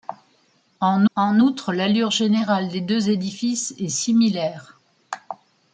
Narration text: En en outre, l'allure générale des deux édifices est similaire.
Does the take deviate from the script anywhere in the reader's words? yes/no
no